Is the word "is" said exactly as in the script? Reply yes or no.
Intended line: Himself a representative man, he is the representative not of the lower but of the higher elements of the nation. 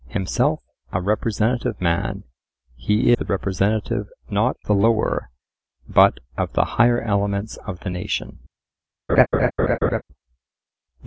no